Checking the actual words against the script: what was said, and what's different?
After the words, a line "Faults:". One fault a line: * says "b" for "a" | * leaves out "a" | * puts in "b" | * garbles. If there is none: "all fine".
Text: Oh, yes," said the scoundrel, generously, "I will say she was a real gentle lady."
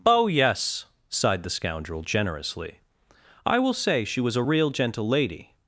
Oh, yes," sighed the scoundrel, generously, "I will say she was a real gentle lady."
Faults:
* says "sighed" for "said"